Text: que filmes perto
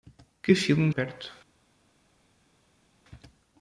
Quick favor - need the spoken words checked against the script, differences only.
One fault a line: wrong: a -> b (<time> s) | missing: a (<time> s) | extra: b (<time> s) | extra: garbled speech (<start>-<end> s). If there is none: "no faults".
no faults